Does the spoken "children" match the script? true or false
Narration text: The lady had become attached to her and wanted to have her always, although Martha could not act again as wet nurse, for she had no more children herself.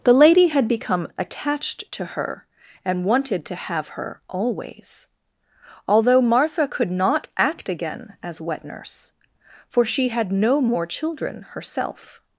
true